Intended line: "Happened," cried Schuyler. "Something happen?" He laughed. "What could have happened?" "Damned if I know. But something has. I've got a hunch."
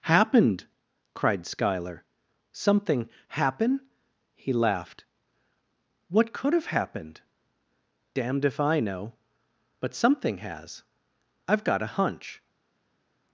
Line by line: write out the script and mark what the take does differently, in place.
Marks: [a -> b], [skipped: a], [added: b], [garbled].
"Happened," cried Schuyler. "Something happen?" He laughed. "What could have happened?" "Damned if I know. But something has. I've got a hunch."